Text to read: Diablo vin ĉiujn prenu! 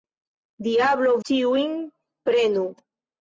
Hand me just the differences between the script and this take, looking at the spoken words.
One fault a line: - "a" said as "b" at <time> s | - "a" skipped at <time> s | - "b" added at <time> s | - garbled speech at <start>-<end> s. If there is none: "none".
- "vin" skipped at 1.1 s